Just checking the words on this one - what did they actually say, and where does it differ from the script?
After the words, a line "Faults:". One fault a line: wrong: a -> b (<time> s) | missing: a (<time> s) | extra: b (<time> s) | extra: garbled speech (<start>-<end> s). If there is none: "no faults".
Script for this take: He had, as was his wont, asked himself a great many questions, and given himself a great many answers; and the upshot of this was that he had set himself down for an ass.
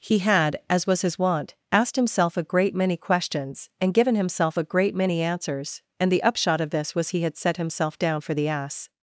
He had, as was his wont, asked himself a great many questions, and given himself a great many answers; and the upshot of this was he had set himself down for the ass.
Faults:
missing: that (7.1 s)
wrong: an -> the (8.3 s)